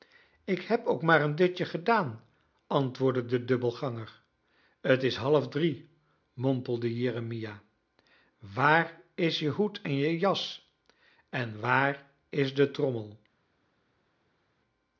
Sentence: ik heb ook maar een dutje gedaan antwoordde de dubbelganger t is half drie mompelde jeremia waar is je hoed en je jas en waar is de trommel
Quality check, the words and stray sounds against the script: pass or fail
pass